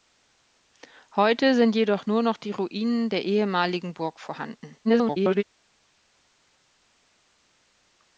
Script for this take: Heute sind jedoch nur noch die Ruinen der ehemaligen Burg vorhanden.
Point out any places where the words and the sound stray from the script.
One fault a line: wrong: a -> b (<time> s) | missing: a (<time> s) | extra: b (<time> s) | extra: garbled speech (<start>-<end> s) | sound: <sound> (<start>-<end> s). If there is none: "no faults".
extra: garbled speech (4.8-5.4 s)